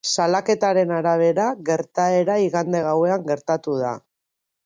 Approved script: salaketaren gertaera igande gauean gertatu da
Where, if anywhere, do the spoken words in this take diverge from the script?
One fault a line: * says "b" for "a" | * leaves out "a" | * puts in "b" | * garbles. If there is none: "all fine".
* puts in "arabera"